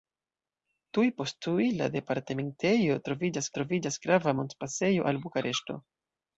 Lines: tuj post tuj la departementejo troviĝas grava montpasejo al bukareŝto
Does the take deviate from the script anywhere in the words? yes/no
yes